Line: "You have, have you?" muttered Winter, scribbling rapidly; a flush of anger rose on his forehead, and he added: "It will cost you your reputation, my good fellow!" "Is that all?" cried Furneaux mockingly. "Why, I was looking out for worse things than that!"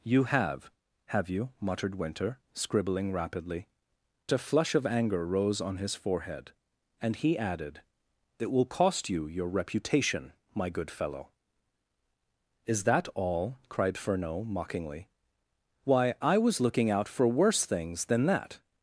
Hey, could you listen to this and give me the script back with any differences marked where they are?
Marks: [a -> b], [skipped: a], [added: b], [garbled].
"You have, have you?" muttered Winter, scribbling rapidly; a flush of anger rose on his forehead, and he added: "It will cost you your reputation, my good fellow!" "Is that all?" cried Furneaux mockingly. "Why, I was looking out for worse things than that!"